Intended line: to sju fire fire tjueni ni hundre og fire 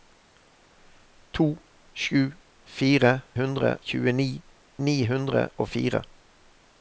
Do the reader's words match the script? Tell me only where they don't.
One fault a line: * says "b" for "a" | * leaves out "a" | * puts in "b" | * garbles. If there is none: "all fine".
* says "hundre" for "fire"